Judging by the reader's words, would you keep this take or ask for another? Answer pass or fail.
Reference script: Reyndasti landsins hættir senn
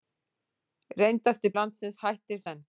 pass